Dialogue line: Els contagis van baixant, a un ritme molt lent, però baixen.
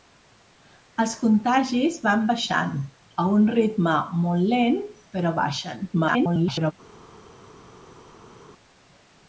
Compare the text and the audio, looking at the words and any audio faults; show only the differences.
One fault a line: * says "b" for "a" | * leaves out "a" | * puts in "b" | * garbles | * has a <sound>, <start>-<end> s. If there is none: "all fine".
* garbles